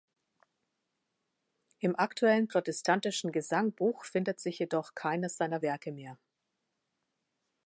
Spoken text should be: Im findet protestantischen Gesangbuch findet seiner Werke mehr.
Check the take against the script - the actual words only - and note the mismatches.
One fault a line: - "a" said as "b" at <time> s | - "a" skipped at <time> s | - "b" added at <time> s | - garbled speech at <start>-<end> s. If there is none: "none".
- "findet" said as "aktuellen" at 1.9 s
- "sich jedoch keines" added at 4.4 s